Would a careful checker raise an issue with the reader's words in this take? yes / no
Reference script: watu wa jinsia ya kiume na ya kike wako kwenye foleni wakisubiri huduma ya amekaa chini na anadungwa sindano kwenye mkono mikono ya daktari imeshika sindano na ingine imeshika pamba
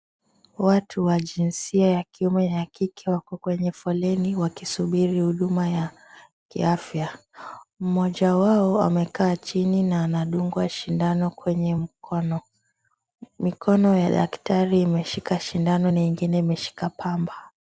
yes